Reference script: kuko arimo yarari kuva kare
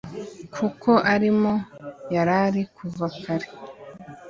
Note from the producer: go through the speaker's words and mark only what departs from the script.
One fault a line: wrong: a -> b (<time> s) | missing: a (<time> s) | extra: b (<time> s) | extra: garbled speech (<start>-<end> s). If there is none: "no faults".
no faults